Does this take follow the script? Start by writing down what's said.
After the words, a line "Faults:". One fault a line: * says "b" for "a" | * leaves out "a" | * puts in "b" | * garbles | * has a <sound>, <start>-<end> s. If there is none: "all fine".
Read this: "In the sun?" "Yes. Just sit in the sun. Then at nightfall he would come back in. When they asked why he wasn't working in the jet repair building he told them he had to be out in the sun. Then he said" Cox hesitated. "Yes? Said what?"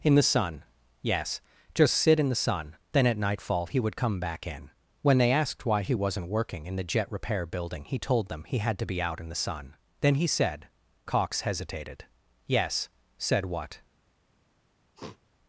"In the sun?" "Yes. Just sit in the sun. Then at nightfall he would come back in. When they asked why he wasn't working in the jet repair building he told them he had to be out in the sun. Then he said" Cox hesitated. "Yes? Said what?"
Faults:
* has a sniff, 15.0-15.2 s